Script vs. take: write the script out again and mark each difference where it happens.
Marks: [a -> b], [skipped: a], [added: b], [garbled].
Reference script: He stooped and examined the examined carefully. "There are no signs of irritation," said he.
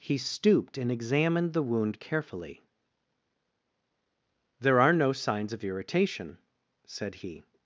He stooped and examined the [examined -> wound] carefully. "There are no signs of irritation," said he.